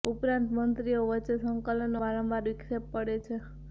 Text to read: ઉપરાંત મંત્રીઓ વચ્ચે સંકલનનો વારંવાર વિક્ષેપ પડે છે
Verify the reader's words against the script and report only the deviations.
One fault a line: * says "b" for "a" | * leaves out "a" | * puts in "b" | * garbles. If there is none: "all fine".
all fine